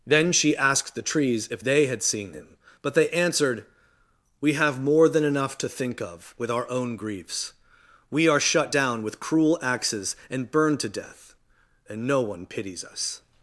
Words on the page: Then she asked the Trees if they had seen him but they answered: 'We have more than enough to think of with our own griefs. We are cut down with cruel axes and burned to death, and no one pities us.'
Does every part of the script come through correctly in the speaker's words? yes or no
no